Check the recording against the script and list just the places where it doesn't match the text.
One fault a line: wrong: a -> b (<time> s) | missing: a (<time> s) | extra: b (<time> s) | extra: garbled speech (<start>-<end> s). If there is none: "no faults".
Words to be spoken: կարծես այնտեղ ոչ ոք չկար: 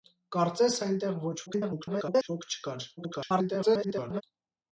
extra: garbled speech (1.5-2.3 s)
extra: garbled speech (3.0-4.2 s)